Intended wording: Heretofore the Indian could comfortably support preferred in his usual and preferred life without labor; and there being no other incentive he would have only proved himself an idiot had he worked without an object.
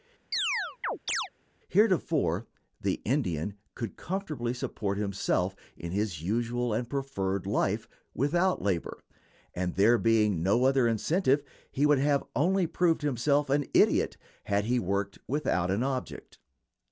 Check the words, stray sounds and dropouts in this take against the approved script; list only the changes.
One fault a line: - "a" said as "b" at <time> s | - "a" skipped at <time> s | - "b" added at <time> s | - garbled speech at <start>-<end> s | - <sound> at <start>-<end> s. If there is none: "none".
- chirp at 0.3-1.3 s
- "preferred" said as "himself" at 5.0 s